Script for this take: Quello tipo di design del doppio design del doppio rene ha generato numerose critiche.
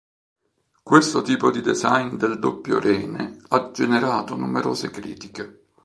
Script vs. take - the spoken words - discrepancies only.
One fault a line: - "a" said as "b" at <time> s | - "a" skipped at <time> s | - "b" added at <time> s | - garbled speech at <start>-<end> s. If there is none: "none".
- "Quello" said as "Questo" at 0.8 s
- "design del doppio" skipped at 2.8 s